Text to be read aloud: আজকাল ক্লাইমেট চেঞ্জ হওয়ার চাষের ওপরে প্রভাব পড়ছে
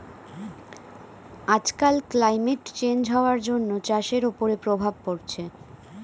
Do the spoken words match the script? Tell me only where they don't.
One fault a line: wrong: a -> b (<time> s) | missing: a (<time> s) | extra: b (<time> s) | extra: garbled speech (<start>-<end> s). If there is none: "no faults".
extra: জন্য (3.5 s)